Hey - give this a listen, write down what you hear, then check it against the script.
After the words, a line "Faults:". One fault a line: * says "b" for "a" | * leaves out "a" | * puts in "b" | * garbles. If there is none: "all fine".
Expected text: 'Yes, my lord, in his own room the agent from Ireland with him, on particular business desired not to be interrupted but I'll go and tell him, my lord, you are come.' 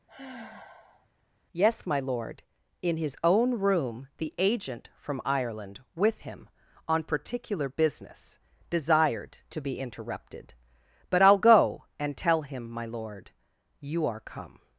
'Yes, my lord, in his own room the agent from Ireland with him, on particular business desired to be interrupted but I'll go and tell him, my lord, you are come.'
Faults:
* leaves out "not"